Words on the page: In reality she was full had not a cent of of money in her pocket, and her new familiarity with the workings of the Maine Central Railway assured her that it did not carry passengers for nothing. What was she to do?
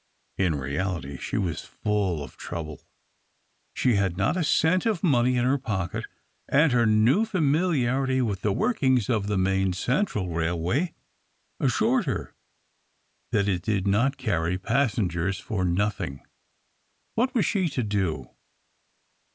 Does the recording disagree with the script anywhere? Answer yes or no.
yes